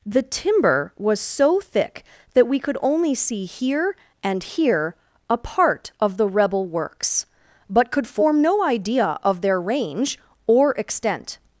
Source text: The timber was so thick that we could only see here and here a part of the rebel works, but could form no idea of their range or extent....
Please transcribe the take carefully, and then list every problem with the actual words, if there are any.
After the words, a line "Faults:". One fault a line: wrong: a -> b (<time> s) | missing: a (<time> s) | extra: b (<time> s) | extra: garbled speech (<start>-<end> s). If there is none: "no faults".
The timber was so thick that we could only see here and here a part of the rebel works, but could form no idea of their range or extent....
Faults:
no faults